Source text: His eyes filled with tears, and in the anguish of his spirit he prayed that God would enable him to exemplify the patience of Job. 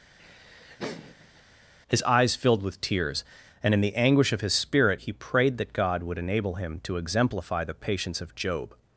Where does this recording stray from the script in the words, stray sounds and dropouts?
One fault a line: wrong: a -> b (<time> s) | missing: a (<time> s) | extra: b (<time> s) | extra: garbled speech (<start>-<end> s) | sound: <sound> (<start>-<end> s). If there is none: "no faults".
sound: laugh (0.2-1.4 s)